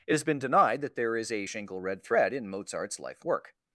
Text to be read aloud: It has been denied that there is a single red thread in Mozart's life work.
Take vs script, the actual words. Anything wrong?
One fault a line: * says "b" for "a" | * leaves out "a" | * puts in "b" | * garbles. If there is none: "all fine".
* says "shingle" for "single"